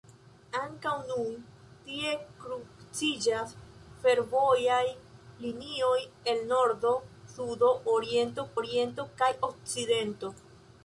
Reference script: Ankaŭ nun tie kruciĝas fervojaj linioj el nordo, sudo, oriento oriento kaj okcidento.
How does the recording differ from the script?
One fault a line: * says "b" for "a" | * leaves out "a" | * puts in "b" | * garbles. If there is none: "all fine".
all fine